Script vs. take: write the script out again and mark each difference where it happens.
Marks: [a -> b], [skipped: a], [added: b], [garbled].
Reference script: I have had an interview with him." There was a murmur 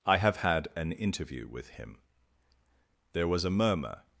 I have had an interview with him." There was a murmur